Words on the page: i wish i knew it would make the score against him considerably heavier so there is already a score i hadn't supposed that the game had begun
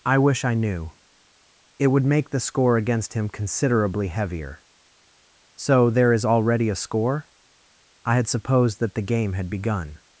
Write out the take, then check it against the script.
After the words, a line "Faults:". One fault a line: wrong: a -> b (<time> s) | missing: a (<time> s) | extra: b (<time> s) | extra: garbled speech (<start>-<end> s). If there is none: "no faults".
i wish i knew it would make the score against him considerably heavier so there is already a score i had supposed that the game had begun
Faults:
wrong: hadn't -> had (8.2 s)